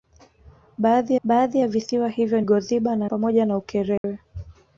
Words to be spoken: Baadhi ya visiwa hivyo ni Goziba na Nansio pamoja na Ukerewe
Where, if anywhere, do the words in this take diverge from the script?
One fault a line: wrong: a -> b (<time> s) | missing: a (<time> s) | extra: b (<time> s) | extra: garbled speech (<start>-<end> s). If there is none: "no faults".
extra: baadhi (1.2 s)
missing: ni (2.4 s)
missing: Nansio (3.1 s)